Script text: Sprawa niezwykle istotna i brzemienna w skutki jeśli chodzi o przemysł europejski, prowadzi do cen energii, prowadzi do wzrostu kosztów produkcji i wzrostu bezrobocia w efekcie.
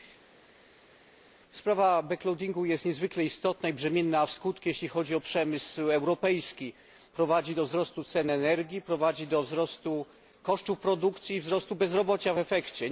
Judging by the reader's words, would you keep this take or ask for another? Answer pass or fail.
fail